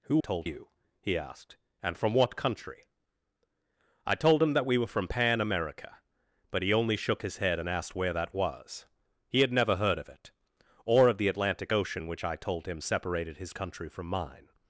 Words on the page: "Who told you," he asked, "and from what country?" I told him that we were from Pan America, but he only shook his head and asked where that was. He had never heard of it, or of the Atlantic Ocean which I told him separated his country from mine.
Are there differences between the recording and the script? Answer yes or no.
no